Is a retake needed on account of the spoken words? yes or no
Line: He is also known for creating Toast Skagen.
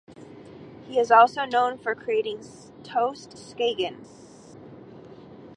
no